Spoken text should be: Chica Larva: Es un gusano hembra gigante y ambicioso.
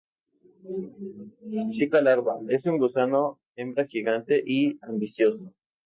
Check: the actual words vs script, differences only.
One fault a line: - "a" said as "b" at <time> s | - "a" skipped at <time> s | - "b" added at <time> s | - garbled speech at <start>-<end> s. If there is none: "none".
none